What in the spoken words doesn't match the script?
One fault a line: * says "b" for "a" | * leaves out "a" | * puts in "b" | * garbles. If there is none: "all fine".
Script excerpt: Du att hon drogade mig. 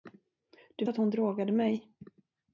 all fine